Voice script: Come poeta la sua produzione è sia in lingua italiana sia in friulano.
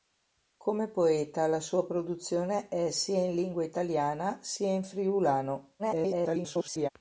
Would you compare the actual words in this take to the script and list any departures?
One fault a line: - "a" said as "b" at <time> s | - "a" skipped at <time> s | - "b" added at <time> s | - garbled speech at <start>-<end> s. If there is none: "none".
- garbled speech at 5.8-6.9 s